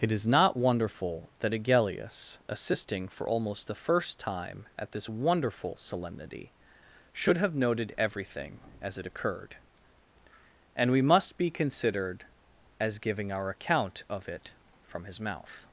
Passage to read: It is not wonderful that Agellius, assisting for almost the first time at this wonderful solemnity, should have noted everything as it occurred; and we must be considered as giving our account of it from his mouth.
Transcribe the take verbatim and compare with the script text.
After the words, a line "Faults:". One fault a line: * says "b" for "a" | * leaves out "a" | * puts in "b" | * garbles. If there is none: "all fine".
It is not wonderful that Agellius, assisting for almost the first time at this wonderful solemnity, should have noted everything as it occurred; and we must be considered as giving our account of it from his mouth.
Faults:
all fine